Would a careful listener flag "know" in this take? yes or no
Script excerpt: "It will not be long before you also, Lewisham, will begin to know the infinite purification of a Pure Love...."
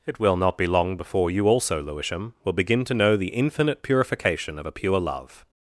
no